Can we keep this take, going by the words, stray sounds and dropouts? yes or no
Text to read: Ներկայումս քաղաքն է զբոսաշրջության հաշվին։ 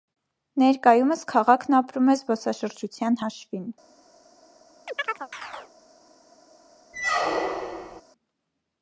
no